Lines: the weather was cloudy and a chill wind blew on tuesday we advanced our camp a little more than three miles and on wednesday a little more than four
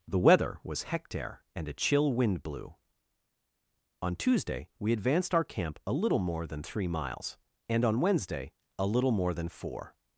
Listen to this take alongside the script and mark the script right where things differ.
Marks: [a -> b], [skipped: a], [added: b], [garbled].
the weather was [cloudy -> hectare] and a chill wind blew on tuesday we advanced our camp a little more than three miles and on wednesday a little more than four